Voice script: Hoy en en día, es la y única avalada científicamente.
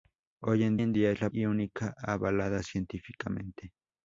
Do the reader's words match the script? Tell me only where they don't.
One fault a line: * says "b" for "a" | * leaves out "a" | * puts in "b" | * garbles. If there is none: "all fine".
all fine